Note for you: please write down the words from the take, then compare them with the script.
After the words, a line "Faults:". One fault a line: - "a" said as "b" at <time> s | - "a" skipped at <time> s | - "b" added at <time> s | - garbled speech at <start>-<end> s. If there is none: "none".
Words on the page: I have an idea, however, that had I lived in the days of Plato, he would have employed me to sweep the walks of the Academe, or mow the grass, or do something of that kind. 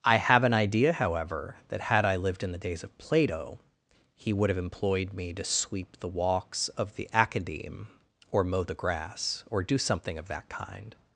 I have an idea, however, that had I lived in the days of Plato, he would have employed me to sweep the walks of the Academe, or mow the grass, or do something of that kind.
Faults:
none